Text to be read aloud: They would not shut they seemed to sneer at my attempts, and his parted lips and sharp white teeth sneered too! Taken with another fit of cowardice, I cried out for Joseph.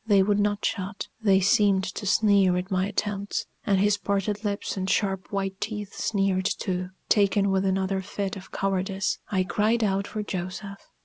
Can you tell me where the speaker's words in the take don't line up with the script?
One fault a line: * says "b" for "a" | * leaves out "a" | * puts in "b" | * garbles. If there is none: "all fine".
all fine